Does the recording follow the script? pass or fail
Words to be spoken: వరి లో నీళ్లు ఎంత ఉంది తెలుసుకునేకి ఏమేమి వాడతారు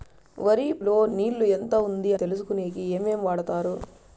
pass